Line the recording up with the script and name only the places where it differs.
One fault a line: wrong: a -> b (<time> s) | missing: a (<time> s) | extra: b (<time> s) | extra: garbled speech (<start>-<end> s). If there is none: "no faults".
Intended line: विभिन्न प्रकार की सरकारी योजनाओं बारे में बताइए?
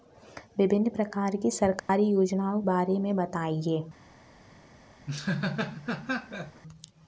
no faults